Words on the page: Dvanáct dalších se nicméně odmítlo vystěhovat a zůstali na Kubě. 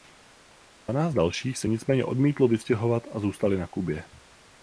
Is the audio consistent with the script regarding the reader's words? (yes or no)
yes